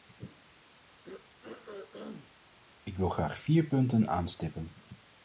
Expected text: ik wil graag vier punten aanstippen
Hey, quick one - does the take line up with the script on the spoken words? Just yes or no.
yes